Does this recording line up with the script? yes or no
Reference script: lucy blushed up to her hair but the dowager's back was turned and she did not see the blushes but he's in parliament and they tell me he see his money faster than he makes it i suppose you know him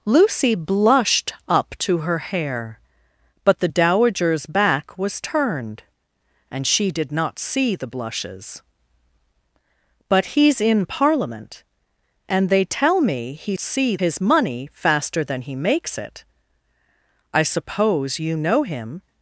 yes